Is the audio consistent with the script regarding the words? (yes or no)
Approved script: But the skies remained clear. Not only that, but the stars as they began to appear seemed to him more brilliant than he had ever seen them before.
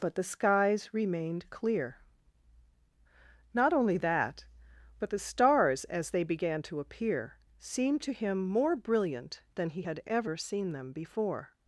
yes